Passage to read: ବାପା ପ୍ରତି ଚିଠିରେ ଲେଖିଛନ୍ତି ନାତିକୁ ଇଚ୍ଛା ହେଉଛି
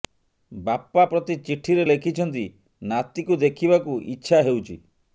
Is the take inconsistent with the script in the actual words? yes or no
yes